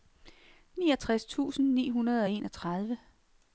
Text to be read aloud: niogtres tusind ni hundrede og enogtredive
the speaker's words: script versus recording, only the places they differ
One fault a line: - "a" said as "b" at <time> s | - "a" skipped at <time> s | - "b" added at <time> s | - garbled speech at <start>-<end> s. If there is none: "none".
none